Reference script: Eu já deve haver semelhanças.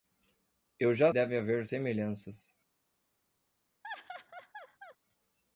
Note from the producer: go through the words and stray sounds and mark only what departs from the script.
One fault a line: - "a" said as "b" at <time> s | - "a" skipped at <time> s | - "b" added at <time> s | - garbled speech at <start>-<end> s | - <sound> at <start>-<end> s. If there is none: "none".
- laugh at 3.8-5.0 s